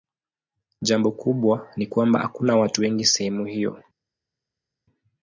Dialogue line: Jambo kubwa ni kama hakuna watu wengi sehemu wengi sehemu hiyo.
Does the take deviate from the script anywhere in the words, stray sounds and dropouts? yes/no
yes